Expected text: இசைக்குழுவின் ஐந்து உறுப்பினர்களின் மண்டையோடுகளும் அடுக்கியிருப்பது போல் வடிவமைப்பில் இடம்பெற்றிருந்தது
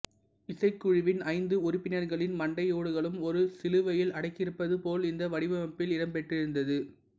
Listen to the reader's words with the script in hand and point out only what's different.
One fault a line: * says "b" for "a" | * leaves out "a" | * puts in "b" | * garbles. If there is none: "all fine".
* puts in "ஒரு சிலுவையில்"
* puts in "இந்த"